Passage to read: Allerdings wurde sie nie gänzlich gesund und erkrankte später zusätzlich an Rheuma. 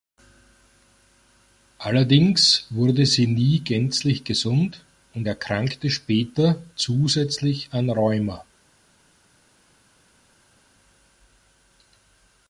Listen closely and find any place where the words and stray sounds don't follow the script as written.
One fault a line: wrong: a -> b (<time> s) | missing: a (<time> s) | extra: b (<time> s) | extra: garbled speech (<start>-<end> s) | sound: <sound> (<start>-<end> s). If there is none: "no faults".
no faults